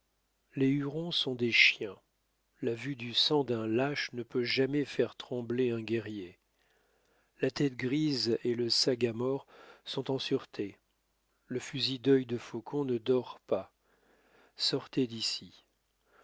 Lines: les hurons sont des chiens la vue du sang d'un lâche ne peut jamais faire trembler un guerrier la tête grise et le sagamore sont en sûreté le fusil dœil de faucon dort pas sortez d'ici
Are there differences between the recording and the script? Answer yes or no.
yes